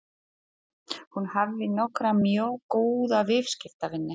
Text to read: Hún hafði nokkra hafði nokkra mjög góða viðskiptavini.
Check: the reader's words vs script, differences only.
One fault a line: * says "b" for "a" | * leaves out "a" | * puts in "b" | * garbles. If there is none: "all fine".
* leaves out "hafði nokkra"